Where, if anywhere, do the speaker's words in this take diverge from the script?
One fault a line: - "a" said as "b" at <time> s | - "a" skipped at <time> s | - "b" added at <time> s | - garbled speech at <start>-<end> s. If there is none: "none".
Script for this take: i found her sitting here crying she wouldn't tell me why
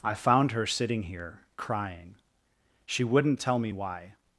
none